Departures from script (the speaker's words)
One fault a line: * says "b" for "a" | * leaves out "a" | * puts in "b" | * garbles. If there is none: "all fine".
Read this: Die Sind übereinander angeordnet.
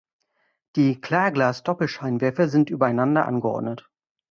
* puts in "Klarglas Doppelscheinwerfer"